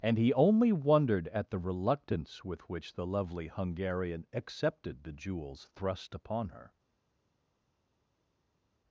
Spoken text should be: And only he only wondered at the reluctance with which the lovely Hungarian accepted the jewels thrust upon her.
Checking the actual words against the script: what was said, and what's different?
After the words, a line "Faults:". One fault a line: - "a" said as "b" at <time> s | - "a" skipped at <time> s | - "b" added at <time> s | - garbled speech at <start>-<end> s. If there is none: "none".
And he only wondered at the reluctance with which the lovely Hungarian accepted the jewels thrust upon her.
Faults:
- "only" skipped at 0.2 s